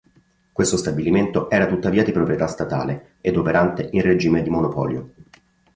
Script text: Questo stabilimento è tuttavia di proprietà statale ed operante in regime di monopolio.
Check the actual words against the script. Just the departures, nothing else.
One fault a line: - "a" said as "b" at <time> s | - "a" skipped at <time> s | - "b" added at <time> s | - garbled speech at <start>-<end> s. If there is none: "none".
- "è" said as "era" at 1.5 s